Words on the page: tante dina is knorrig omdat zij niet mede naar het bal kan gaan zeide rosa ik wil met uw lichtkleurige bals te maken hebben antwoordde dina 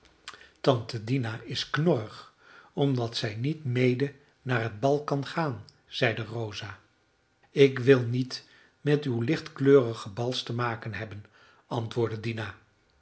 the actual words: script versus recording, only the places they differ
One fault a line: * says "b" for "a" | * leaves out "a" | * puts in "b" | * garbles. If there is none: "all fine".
* puts in "niet"